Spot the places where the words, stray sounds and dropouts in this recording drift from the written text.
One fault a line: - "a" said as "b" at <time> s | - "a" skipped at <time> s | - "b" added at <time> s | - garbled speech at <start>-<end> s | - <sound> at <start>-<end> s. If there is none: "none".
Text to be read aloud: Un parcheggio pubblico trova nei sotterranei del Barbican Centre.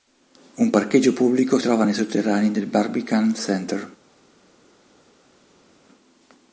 none